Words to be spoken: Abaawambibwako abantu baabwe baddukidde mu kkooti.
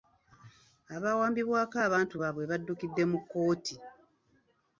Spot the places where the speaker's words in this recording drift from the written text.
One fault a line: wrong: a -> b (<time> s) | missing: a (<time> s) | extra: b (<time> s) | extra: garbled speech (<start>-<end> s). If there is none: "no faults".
no faults